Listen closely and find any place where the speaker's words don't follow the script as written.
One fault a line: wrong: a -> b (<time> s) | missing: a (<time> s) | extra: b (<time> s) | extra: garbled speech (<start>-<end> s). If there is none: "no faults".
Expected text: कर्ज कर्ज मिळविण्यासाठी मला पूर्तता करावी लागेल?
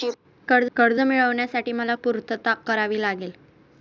no faults